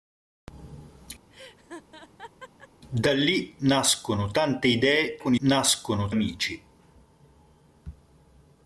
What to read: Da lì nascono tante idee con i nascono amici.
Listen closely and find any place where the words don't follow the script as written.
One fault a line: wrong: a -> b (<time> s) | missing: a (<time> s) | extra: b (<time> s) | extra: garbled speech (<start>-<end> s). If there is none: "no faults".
no faults